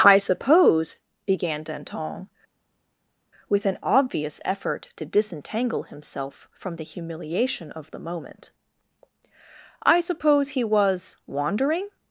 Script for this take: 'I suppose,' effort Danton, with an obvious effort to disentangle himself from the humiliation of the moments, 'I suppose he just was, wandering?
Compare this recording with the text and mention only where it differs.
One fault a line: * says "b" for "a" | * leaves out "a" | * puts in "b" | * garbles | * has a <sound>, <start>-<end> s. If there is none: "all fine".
* says "began" for "effort"
* says "moment" for "moments"
* leaves out "just"